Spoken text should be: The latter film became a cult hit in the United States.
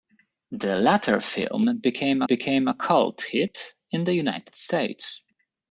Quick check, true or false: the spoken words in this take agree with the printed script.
false